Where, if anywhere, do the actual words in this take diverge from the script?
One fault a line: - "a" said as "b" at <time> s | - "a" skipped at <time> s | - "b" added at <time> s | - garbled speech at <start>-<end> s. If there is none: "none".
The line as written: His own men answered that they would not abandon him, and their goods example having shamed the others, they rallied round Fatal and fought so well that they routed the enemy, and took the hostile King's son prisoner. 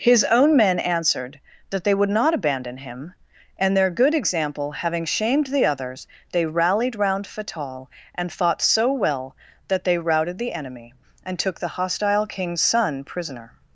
- "goods" said as "good" at 3.9 s